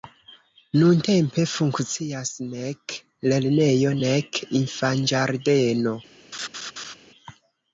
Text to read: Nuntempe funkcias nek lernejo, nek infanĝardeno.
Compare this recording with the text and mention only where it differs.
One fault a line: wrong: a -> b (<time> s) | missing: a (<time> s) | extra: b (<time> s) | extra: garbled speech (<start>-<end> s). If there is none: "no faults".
no faults